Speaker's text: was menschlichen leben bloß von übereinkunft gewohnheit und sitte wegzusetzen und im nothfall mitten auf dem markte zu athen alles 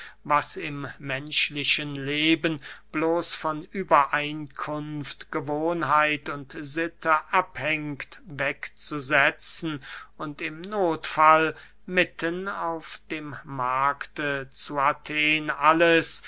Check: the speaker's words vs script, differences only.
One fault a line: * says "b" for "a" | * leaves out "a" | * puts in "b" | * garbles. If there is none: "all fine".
* puts in "im"
* puts in "abhängt"